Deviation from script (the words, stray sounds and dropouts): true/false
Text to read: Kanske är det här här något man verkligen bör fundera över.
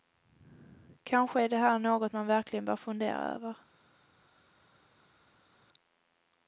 true